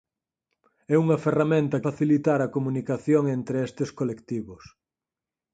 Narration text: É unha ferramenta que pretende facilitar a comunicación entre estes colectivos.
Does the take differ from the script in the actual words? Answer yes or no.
yes